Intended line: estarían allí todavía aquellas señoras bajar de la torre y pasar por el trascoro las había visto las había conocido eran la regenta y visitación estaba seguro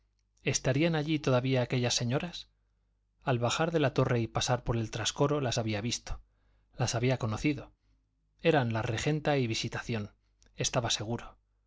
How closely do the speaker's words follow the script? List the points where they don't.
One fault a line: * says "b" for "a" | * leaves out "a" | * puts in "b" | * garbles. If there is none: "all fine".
* puts in "al"